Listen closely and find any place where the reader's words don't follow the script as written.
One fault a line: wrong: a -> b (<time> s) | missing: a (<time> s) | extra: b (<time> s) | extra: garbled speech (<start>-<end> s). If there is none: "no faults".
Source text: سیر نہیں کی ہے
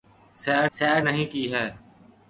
extra: سیر (0.7 s)